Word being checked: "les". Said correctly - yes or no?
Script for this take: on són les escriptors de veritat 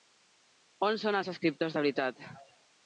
no